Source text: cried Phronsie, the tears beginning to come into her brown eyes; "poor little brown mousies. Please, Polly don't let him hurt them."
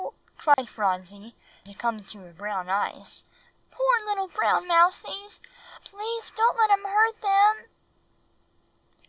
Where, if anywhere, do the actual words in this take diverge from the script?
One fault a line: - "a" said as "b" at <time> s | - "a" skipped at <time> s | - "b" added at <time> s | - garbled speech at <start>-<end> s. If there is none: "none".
- "the tears beginning" skipped at 1.4 s
- "Polly" skipped at 6.3 s